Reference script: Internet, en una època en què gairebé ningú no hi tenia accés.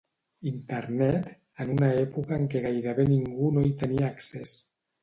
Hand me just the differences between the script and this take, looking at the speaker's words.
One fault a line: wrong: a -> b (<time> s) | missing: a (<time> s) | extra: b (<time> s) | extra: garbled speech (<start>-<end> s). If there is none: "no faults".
no faults